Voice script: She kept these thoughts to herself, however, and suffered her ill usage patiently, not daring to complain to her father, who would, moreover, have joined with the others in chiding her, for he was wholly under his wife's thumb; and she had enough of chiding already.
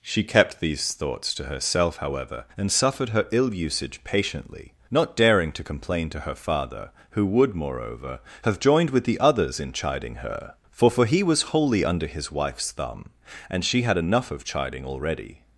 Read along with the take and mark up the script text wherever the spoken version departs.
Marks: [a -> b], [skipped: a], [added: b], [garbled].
She kept these thoughts to herself, however, and suffered her ill usage patiently, not daring to complain to her father, who would, moreover, have joined with the others in chiding her, for [added: for] he was wholly under his wife's thumb; and she had enough of chiding already.